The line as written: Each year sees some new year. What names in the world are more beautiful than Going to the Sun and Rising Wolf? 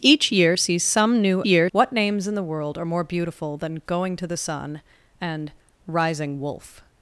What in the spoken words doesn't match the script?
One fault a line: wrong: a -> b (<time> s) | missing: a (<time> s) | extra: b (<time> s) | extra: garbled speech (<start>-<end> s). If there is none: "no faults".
no faults